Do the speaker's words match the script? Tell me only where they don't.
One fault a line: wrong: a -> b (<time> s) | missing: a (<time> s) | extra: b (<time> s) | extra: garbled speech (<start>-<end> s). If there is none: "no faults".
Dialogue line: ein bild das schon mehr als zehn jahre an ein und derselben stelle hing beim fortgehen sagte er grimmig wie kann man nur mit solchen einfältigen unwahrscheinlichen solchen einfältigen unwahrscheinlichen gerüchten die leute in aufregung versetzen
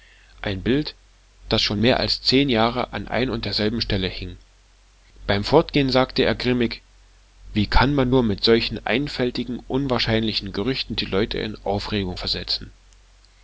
missing: solchen einfältigen unwahrscheinlichen (10.5 s)